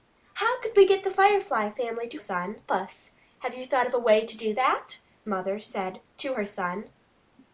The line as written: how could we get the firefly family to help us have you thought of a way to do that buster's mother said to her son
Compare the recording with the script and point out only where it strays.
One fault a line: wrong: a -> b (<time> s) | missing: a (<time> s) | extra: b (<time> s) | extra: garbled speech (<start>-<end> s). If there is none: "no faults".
wrong: help -> son (2.2 s)
missing: buster's (5.0 s)